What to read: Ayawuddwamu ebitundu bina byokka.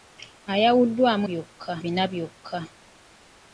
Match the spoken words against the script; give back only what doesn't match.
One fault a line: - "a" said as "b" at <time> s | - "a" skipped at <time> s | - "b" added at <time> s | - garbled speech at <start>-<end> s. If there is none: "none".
- "ebitundu" said as "byokka" at 1.3 s